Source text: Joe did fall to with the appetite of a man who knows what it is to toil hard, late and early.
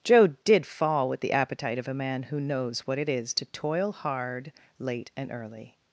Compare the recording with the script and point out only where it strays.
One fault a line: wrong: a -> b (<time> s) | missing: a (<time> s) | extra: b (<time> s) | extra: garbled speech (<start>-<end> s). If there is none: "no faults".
missing: to (1.1 s)